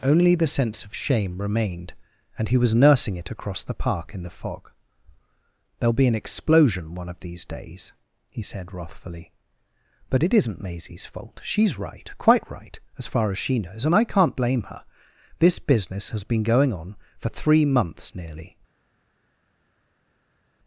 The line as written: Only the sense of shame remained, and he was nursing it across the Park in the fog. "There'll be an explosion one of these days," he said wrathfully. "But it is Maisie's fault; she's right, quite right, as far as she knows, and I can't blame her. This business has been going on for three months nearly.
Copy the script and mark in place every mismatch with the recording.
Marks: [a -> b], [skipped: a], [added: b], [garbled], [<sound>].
Only the sense of shame remained, and he was nursing it across the Park in the fog. "There'll be an explosion one of these days," he said wrathfully. "But it [is -> isn't] Maisie's fault; she's right, quite right, as far as she knows, and I can't blame her. This business has been going on for three months nearly.